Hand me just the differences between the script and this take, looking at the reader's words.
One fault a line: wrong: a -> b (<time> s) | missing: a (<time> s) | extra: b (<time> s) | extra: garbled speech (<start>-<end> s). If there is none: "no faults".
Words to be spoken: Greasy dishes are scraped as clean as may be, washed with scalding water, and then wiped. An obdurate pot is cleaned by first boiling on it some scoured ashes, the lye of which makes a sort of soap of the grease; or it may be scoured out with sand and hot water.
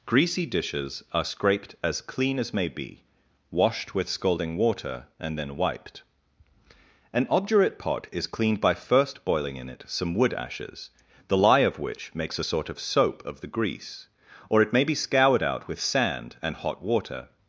wrong: on -> in (9.6 s)
wrong: scoured -> wood (10.2 s)